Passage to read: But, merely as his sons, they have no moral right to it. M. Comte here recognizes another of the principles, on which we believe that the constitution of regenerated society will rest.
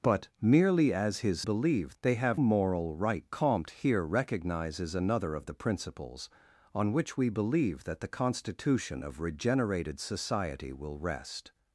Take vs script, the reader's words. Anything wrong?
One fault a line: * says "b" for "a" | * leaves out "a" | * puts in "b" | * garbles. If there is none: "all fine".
* says "believe" for "sons"
* leaves out "no"
* leaves out "to it M"